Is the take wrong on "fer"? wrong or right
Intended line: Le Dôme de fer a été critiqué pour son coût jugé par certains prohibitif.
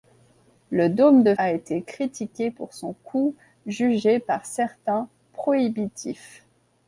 wrong